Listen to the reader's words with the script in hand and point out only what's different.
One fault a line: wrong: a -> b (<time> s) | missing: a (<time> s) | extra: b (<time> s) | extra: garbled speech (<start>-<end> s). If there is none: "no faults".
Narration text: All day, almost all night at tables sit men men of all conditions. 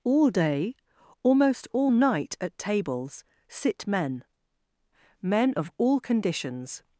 no faults